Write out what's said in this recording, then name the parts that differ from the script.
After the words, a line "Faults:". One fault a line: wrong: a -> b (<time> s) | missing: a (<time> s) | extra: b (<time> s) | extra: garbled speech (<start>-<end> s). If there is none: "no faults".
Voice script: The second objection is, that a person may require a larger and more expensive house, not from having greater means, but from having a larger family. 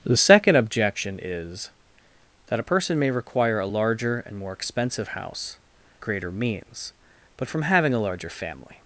The second objection is, that a person may require a larger and more expensive house, greater means, but from having a larger family.
Faults:
missing: not from having (5.6 s)